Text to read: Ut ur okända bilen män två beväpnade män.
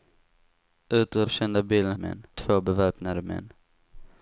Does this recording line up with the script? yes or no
yes